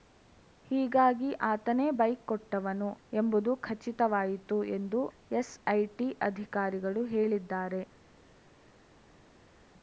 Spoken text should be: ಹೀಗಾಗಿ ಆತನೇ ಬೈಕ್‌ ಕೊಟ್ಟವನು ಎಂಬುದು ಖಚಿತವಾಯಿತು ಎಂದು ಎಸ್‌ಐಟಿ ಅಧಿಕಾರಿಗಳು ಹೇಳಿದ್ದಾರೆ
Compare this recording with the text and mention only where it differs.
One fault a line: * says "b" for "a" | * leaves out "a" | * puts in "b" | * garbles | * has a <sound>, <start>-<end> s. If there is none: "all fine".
all fine